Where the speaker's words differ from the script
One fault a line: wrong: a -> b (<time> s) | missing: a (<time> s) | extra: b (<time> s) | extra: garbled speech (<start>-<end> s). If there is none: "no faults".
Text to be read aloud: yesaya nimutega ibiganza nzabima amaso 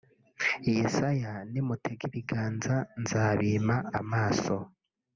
no faults